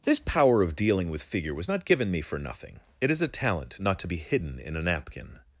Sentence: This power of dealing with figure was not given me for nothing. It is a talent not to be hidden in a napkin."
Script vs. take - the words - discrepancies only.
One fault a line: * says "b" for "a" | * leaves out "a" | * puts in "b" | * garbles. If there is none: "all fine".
all fine